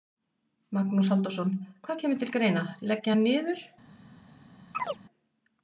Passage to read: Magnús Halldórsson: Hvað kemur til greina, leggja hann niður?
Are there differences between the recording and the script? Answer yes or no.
no